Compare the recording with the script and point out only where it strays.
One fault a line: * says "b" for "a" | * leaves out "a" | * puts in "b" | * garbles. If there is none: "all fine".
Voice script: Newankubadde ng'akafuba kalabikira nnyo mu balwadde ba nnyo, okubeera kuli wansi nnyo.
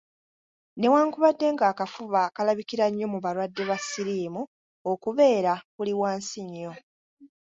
* says "siriimu" for "nnyo"